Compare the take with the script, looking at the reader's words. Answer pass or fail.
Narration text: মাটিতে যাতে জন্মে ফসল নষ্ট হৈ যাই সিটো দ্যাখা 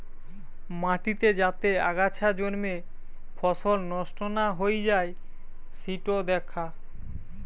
fail